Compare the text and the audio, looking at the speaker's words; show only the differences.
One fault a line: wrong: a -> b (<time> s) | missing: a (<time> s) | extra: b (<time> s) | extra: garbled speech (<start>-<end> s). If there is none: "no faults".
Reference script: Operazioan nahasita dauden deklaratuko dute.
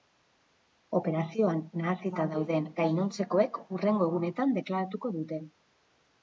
extra: gainontzekoek hurrengo egunetan (2.8 s)